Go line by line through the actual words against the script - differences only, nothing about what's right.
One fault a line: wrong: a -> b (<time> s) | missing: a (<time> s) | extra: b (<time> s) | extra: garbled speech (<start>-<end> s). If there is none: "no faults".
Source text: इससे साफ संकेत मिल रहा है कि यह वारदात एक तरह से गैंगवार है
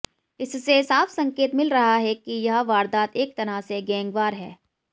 no faults